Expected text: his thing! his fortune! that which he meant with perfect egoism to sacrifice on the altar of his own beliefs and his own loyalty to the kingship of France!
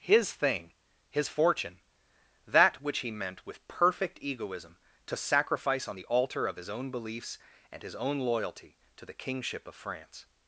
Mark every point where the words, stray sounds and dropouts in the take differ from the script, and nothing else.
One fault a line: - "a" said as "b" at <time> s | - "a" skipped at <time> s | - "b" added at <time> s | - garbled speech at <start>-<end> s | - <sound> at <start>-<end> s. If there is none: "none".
none